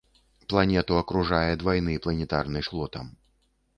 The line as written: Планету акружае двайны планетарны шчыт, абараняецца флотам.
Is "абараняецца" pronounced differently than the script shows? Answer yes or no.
yes